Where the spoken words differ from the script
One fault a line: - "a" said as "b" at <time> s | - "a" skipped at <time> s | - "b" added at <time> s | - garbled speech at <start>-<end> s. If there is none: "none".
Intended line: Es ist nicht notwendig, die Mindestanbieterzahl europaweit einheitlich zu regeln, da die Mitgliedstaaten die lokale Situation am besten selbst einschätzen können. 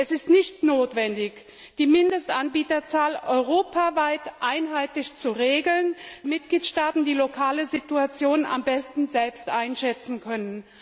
- "da die" skipped at 5.9 s